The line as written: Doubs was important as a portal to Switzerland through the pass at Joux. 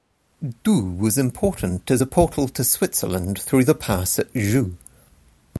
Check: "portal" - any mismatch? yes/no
no